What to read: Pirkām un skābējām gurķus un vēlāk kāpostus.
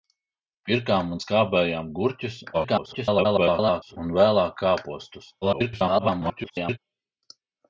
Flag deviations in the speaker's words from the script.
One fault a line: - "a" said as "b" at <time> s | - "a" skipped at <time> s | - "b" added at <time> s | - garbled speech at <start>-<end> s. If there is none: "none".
- garbled speech at 2.5-4.0 s
- garbled speech at 5.4-6.8 s